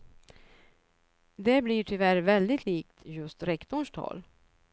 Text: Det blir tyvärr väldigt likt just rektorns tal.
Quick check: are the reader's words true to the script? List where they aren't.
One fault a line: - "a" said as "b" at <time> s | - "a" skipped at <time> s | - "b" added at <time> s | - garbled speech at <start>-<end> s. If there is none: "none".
none